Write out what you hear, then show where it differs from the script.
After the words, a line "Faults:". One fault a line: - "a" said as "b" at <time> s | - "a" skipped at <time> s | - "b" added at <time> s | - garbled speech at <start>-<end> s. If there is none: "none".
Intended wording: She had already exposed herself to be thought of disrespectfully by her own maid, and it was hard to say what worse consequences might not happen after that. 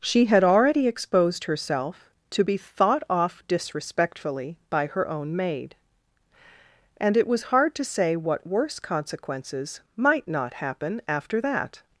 She had already exposed herself to be thought off disrespectfully by her own maid, and it was hard to say what worse consequences might not happen after that.
Faults:
- "of" said as "off" at 3.1 s